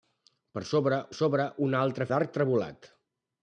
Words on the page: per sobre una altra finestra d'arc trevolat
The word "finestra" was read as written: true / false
false